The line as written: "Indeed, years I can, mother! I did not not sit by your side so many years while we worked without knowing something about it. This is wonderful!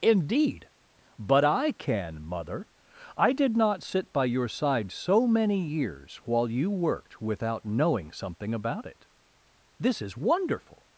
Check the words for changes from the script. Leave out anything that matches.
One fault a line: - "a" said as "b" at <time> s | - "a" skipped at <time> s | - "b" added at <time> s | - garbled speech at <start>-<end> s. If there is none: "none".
- "years" said as "but" at 1.2 s
- "not" skipped at 3.8 s
- "we" said as "you" at 6.5 s